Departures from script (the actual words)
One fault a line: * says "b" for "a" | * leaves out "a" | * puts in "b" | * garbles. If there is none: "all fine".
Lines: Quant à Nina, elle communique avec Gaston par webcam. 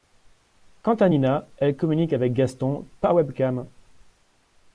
all fine